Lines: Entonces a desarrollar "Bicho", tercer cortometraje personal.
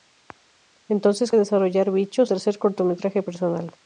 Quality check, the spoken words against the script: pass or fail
pass